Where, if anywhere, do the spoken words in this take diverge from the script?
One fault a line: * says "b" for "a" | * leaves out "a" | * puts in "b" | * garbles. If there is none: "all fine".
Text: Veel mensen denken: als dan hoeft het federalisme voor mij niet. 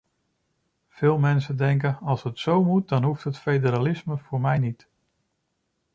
* puts in "het zo moet"